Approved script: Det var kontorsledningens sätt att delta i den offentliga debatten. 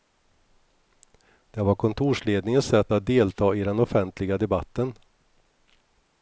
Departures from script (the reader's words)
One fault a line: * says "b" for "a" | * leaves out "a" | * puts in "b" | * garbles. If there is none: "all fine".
all fine